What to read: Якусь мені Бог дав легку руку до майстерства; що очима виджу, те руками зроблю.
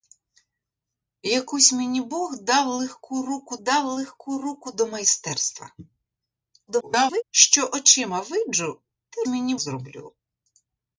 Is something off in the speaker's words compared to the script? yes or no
yes